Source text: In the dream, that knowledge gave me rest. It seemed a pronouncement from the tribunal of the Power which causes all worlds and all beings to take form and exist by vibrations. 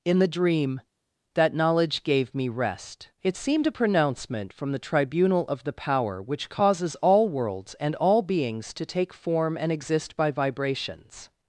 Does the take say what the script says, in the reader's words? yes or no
yes